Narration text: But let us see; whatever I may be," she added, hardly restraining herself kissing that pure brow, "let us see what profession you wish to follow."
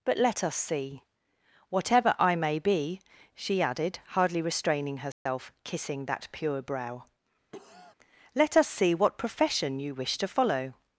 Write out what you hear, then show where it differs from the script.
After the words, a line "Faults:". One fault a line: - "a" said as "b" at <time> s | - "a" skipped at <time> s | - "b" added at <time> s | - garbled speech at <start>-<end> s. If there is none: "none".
But let us see; whatever I may be," she added, hardly restraining herself kissing that pure brow, "let us see what profession you wish to follow."
Faults:
none